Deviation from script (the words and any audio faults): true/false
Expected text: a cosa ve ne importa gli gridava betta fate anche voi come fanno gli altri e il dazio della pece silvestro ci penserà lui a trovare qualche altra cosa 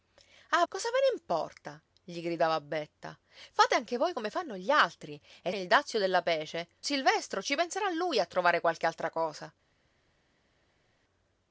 false